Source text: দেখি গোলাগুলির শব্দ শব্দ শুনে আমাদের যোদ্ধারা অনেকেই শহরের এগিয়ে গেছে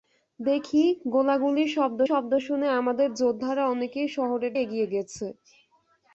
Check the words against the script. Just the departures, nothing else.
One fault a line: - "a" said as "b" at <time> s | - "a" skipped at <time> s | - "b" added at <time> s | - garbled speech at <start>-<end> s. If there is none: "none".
none